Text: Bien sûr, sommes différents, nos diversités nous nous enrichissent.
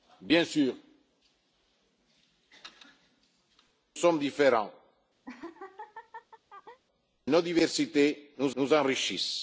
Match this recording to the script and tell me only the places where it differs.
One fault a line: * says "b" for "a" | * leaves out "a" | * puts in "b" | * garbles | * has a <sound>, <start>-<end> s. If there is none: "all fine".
* has a laugh, 5.2-6.8 s